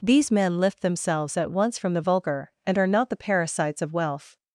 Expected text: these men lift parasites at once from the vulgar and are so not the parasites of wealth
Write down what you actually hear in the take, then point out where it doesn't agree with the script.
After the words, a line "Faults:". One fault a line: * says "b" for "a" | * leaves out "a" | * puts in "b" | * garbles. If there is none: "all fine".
these men lift themselves at once from the vulgar and are not the parasites of wealth
Faults:
* says "themselves" for "parasites"
* leaves out "so"